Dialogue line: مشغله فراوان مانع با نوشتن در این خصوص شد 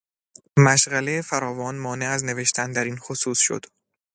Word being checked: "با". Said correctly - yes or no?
no